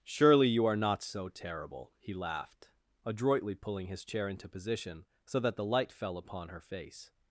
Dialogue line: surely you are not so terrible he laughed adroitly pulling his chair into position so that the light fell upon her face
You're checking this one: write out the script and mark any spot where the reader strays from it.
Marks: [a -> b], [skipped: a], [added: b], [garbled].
surely you are not so terrible he laughed adroitly pulling his chair into position so that the light fell upon her face